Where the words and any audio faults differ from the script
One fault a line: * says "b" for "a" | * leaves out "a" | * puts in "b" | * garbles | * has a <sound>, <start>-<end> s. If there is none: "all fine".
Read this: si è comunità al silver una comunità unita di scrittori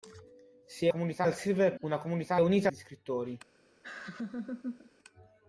* has a laugh, 3.8-4.9 s